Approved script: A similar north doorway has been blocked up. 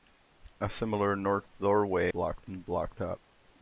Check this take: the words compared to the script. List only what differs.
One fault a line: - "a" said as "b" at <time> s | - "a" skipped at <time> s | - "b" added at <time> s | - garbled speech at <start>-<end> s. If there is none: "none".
- "has" said as "blocked" at 2.1 s